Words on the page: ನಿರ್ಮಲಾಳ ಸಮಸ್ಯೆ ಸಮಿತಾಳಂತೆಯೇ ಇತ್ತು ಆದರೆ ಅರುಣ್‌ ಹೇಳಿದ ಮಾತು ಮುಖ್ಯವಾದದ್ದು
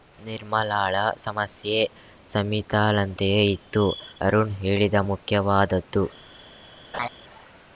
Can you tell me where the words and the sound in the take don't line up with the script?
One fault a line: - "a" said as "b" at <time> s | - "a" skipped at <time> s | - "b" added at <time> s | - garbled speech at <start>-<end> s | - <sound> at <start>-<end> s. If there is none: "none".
- "ಆದರೆ" skipped at 3.8 s
- "ಮಾತು" skipped at 5.0 s
- laugh at 6.9-7.1 s